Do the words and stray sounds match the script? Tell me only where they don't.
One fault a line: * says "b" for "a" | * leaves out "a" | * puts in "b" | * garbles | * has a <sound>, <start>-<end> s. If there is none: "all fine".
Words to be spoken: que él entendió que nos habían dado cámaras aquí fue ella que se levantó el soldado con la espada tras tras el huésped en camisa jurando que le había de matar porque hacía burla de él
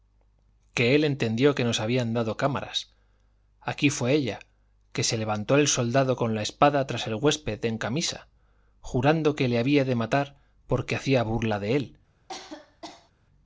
* leaves out "tras"
* has a cough, 12.3-13.1 s